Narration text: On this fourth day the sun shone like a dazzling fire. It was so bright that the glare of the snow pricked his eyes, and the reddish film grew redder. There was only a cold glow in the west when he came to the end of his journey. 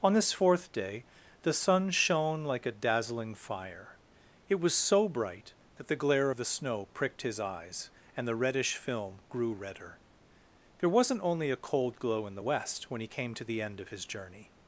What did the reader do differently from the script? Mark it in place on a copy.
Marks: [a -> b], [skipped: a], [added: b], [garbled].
On this fourth day the sun shone like a dazzling fire. It was so bright that the glare of the snow pricked his eyes, and the reddish film grew redder. There [was -> wasn't] only a cold glow in the west when he came to the end of his journey.